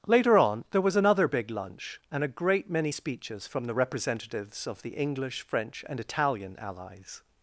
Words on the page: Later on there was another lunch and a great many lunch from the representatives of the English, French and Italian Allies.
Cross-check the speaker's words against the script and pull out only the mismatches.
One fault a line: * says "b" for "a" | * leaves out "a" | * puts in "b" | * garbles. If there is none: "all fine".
* puts in "big"
* says "speeches" for "lunch"